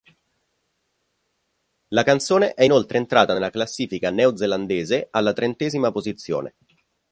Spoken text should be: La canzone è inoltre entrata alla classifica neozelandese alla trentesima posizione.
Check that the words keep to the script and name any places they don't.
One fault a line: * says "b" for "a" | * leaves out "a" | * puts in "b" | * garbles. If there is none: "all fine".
* says "nella" for "alla"